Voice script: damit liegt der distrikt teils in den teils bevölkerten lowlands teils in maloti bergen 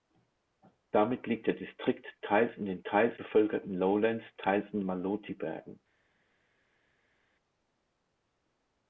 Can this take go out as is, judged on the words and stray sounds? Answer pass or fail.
pass